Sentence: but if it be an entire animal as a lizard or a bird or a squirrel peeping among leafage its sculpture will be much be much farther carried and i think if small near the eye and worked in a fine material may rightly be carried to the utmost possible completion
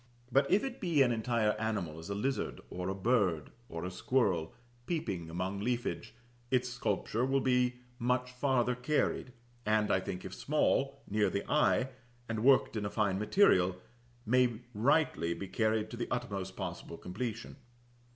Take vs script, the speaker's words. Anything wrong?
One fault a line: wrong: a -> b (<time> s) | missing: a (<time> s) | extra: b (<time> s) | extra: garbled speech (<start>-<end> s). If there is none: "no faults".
missing: be much (8.3 s)